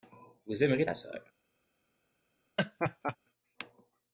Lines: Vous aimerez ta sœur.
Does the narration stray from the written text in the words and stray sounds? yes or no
yes